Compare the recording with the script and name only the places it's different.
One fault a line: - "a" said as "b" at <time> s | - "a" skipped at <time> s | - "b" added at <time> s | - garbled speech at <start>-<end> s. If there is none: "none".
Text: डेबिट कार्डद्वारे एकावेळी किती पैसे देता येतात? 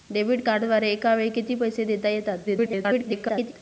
- garbled speech at 2.4-3.5 s